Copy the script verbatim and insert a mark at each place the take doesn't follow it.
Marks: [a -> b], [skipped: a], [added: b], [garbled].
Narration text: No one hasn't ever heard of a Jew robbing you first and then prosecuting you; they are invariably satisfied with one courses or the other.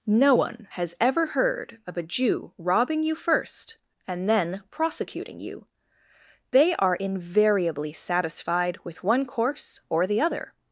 No one [hasn't -> has] ever heard of a Jew robbing you first and then prosecuting you; they are invariably satisfied with one [courses -> course] or the other.